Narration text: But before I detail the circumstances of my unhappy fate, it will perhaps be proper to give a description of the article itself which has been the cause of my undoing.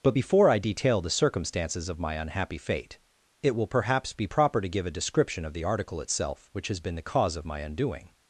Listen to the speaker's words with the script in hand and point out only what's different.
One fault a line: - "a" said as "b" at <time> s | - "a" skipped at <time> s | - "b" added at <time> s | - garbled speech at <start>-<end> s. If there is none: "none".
none